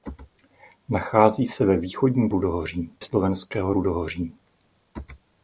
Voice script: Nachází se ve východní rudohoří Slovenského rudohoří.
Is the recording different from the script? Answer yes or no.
no